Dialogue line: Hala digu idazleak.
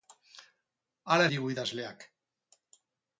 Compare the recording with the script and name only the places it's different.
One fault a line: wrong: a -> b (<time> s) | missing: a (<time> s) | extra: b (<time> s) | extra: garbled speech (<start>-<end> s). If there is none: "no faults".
no faults